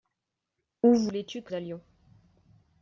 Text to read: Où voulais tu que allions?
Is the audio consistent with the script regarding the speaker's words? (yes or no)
yes